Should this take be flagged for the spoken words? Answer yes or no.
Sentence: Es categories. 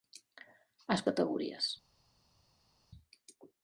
no